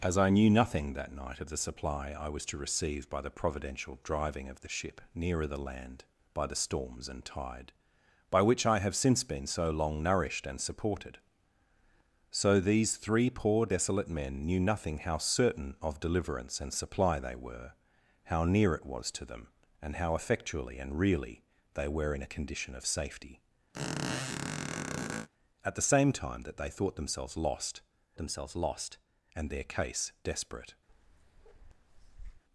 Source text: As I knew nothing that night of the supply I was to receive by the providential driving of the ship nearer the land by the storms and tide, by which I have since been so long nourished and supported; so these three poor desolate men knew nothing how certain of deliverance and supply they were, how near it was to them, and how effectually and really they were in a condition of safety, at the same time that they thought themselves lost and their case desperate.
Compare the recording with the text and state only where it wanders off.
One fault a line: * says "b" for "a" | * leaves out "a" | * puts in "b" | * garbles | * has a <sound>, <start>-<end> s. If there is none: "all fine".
* has a squeak, 23.7-25.3 s
* puts in "themselves lost"
* has a bark, 30.9-32.4 s